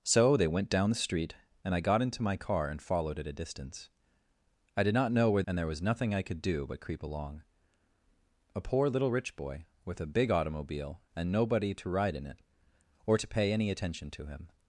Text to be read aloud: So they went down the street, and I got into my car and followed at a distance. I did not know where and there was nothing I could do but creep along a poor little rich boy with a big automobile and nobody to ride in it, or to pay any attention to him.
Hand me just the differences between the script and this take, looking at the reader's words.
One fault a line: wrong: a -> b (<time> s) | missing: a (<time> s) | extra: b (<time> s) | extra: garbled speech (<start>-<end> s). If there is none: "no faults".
no faults